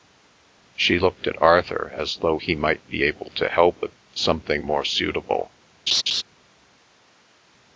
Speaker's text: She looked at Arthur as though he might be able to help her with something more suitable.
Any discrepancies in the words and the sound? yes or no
yes